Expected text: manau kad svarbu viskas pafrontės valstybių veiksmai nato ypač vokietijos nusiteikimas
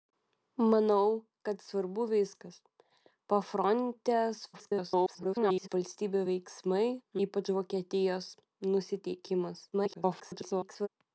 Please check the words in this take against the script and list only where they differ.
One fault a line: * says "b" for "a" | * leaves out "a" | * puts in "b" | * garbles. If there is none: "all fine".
* garbles
* leaves out "nato"
* garbles